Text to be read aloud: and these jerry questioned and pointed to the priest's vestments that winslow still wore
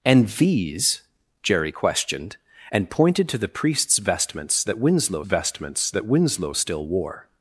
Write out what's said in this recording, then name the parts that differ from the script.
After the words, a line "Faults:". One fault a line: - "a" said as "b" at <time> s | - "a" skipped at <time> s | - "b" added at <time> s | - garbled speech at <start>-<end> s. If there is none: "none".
and these jerry questioned and pointed to the priest's vestments that winslow vestments that winslow still wore
Faults:
- "vestments that winslow" added at 5.2 s